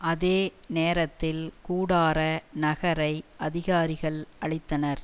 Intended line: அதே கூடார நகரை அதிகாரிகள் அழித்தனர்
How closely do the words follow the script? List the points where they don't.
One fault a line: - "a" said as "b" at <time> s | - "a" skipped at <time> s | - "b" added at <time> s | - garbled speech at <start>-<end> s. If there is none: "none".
- "நேரத்தில்" added at 0.7 s